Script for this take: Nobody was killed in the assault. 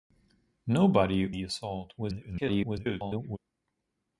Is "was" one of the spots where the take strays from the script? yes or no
yes